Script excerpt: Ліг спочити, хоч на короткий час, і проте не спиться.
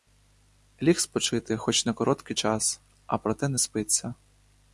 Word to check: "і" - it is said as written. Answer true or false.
false